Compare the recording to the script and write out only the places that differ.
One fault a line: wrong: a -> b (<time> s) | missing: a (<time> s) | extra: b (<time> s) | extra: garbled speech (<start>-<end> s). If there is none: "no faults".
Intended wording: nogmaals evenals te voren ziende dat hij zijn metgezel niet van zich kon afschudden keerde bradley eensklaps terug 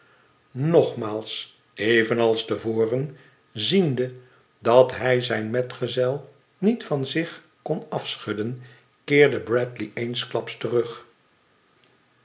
no faults